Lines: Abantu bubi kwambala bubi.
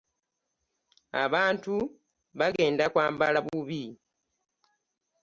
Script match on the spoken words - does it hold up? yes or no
no